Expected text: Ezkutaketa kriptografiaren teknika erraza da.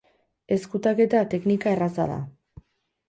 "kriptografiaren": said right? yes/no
no